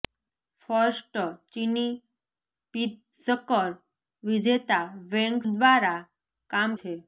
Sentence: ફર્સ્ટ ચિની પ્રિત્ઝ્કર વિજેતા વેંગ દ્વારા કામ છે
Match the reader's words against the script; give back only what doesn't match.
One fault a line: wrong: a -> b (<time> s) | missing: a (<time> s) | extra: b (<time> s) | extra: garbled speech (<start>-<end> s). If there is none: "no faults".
no faults